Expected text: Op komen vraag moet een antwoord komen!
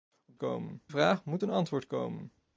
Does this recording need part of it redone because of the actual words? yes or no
no